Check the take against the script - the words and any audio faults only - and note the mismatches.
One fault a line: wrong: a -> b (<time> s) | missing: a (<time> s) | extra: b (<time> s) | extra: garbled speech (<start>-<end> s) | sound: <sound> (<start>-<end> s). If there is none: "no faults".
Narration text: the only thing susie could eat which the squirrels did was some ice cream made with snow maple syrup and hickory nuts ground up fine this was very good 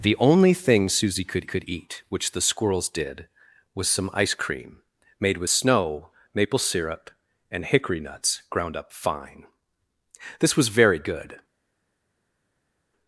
extra: could (1.5 s)